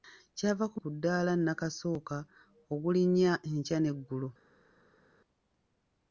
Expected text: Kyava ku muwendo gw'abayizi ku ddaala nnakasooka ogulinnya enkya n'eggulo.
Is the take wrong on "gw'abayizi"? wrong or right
wrong